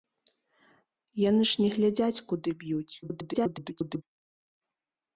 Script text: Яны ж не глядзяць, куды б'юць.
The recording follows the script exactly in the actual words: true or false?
false